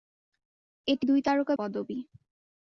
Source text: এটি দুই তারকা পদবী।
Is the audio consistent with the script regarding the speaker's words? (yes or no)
yes